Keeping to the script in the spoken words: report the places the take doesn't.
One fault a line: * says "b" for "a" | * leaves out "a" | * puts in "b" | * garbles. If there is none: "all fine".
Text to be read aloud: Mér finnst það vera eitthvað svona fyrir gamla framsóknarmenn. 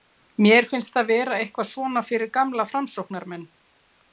all fine